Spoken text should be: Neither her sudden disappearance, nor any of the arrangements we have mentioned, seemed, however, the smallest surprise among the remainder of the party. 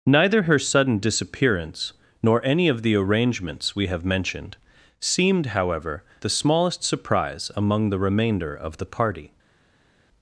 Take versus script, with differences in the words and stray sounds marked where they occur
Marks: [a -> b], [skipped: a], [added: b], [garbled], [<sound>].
Neither her sudden disappearance, nor any of the arrangements we have mentioned, seemed, however, the smallest surprise among the remainder of the party.